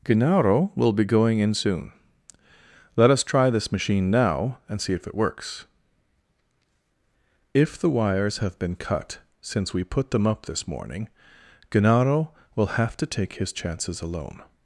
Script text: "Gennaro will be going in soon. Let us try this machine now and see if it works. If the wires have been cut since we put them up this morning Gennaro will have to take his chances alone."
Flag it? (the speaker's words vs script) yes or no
no